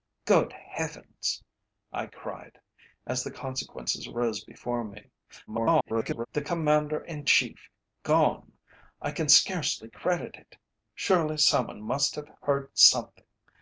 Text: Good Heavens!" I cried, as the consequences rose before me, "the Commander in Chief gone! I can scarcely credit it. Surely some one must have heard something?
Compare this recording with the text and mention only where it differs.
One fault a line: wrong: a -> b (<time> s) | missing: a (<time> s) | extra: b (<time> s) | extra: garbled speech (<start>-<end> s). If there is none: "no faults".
extra: garbled speech (5.5-6.3 s)